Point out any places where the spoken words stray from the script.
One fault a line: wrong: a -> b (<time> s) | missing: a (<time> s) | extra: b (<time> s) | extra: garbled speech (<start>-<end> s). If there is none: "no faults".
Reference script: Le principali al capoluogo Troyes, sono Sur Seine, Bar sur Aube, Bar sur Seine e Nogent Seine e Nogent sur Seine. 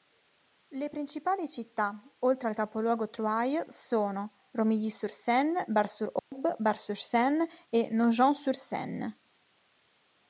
extra: città oltre (1.5 s)
extra: Romilly (4.5 s)
missing: Seine e Nogent (8.4 s)